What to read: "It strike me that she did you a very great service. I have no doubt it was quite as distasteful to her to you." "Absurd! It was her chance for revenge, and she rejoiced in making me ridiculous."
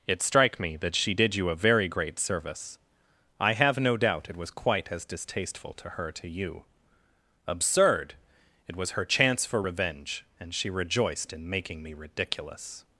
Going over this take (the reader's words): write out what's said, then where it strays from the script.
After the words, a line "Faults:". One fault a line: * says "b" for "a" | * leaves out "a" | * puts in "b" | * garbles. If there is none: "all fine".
"It strike me that she did you a very great service. I have no doubt it was quite as distasteful to her to you." "Absurd! It was her chance for revenge, and she rejoiced in making me ridiculous."
Faults:
all fine